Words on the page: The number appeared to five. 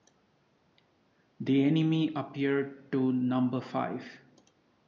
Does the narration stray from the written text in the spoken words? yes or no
yes